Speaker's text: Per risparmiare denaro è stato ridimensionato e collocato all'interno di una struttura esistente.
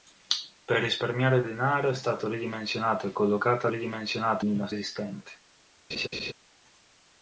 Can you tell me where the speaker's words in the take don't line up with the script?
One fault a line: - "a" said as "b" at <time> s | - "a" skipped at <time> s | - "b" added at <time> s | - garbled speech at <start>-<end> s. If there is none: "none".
- "all'interno" said as "ridimensionato" at 3.7 s
- "struttura" skipped at 4.7 s